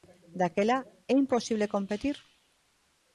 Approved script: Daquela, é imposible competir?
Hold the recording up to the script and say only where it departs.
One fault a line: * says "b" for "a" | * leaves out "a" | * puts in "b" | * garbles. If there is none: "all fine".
all fine